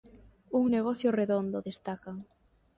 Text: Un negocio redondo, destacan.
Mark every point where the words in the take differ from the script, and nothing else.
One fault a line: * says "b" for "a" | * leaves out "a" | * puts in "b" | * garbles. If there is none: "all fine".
all fine